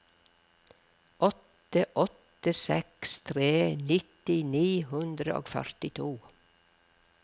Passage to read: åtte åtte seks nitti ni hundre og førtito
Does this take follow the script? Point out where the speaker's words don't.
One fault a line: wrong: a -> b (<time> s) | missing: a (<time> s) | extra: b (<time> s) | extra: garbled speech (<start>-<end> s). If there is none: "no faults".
extra: tre (3.3 s)